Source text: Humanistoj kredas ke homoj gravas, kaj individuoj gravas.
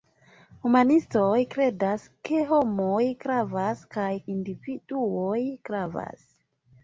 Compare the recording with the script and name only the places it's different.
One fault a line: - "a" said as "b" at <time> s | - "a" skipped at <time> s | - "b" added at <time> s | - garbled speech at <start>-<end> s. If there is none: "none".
none